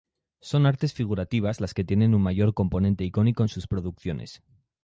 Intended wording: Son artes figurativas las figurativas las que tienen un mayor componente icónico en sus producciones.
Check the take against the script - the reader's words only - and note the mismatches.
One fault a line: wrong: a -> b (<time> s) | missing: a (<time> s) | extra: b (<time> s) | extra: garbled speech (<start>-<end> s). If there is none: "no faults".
missing: figurativas las (1.8 s)